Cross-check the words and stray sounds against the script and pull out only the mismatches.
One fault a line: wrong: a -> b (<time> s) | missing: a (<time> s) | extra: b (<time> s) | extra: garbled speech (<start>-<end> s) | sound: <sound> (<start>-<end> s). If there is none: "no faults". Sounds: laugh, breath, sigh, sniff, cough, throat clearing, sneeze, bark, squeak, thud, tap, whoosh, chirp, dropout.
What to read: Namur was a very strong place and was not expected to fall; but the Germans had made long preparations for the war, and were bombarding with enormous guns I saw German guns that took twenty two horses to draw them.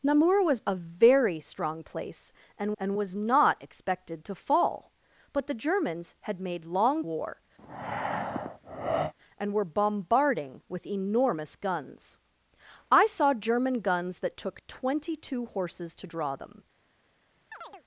extra: and (2.8 s)
missing: preparations for the (7.0 s)
sound: breath (7.6-9.1 s)
sound: chirp (17.5-17.8 s)